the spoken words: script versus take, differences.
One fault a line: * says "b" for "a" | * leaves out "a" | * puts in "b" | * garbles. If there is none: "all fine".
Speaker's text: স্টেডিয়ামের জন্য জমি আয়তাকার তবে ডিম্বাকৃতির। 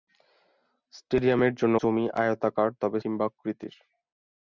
all fine